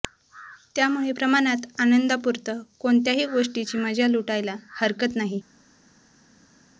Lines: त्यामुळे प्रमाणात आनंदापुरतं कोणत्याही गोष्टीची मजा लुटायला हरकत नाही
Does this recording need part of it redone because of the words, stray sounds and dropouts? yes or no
no